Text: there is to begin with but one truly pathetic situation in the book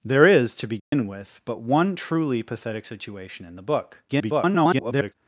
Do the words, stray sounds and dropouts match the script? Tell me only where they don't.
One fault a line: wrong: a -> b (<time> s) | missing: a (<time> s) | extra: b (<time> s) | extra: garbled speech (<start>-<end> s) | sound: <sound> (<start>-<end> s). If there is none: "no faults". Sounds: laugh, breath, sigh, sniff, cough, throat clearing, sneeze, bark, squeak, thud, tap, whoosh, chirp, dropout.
sound: dropout (0.8-0.9 s)
extra: garbled speech (4.1-5.1 s)